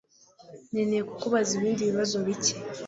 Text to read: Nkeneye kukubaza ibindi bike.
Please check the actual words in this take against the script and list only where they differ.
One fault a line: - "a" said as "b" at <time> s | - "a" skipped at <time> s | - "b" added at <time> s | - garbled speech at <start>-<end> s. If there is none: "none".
- "bibazo" added at 1.9 s